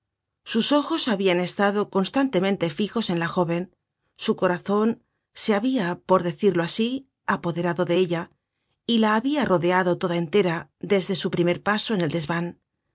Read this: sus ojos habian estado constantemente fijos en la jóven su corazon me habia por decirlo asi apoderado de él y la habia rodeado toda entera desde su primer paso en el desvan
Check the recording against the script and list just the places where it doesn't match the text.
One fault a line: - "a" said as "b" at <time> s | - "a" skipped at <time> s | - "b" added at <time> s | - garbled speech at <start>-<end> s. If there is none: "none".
- "me" said as "se" at 5.3 s
- "él" said as "ella" at 8.0 s